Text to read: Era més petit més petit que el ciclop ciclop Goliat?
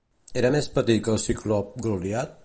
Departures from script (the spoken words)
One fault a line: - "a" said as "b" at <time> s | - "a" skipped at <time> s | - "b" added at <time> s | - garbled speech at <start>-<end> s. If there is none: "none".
- "més petit" skipped at 1.0 s
- "ciclop" skipped at 1.7 s